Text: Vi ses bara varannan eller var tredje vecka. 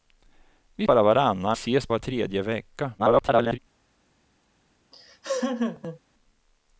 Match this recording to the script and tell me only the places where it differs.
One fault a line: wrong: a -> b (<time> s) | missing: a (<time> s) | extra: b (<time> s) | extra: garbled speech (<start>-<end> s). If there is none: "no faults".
missing: ses (0.8 s)
wrong: eller -> ses (1.5 s)
extra: garbled speech (3.0-3.6 s)